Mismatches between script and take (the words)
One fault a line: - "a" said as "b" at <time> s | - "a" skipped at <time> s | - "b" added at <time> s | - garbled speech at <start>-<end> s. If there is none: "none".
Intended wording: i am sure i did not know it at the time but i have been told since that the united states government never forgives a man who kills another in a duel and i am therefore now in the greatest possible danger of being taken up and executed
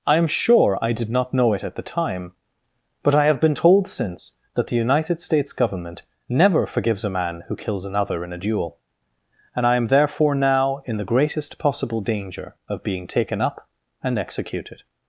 none